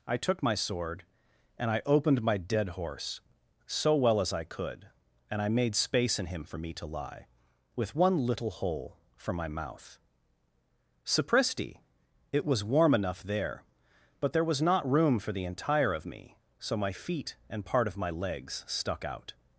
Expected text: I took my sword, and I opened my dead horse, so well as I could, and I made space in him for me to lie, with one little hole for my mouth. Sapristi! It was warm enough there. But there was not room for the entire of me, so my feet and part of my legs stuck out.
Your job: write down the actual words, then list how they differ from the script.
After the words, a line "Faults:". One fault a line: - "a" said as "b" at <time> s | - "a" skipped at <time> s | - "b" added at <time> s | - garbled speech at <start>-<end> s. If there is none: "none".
I took my sword, and I opened my dead horse, so well as I could, and I made space in him for me to lie, with one little hole for my mouth. Sapristi! It was warm enough there. But there was not room for the entire of me, so my feet and part of my legs stuck out.
Faults:
none